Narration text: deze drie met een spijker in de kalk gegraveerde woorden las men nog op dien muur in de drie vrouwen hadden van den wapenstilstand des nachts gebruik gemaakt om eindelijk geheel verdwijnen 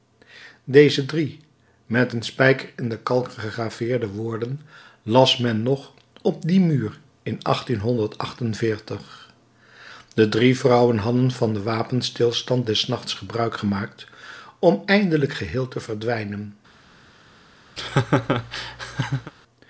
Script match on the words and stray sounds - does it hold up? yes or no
no